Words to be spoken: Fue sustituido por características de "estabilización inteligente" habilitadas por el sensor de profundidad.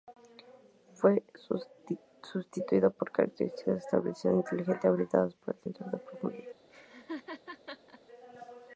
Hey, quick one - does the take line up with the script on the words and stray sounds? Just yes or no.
no